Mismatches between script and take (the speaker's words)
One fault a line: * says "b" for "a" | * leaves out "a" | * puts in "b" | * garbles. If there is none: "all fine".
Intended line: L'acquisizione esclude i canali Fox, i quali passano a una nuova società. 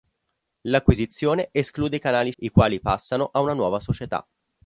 * leaves out "Fox"